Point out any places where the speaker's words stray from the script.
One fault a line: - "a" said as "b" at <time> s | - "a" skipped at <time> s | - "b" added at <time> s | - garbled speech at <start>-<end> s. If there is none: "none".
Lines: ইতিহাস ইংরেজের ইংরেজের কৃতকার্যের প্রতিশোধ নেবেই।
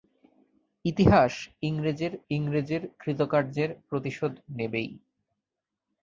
none